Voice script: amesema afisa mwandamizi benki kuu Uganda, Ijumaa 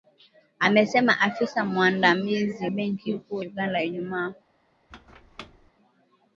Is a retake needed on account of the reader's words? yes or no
no